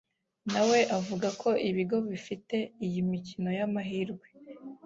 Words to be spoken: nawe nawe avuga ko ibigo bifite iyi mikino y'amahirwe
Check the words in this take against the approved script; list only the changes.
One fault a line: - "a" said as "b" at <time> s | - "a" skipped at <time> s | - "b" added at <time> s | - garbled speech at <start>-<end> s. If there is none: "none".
- "nawe" skipped at 0.8 s